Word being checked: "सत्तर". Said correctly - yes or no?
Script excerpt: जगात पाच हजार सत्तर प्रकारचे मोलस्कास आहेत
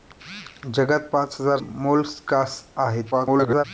no